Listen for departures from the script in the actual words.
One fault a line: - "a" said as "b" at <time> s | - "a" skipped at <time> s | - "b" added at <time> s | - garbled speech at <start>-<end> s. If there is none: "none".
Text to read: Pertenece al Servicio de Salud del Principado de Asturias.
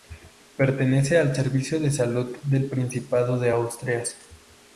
none